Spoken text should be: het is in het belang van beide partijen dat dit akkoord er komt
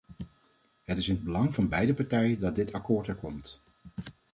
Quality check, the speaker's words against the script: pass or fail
pass